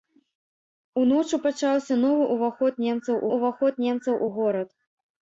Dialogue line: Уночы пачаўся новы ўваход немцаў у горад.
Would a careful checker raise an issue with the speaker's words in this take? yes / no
yes